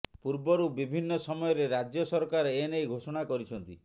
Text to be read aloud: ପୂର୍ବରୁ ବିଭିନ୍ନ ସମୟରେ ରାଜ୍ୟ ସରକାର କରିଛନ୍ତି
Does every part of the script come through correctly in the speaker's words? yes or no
no